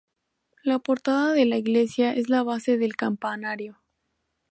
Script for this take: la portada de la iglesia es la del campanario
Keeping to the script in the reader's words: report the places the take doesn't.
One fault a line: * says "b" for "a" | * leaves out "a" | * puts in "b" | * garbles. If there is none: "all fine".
* puts in "base"